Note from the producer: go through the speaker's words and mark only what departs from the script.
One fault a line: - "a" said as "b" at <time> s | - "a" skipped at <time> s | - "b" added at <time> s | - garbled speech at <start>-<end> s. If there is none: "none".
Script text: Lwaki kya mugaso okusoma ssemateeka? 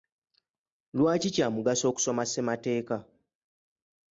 none